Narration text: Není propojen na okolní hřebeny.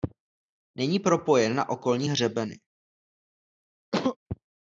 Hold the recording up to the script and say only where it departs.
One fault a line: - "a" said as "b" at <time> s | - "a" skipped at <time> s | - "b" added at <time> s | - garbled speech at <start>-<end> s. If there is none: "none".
none